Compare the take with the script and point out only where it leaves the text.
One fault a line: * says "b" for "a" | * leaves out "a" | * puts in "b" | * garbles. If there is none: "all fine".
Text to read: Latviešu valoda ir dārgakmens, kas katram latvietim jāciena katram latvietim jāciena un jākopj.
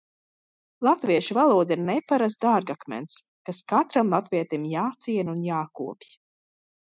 * puts in "neparasts"
* leaves out "katram latvietim jāciena"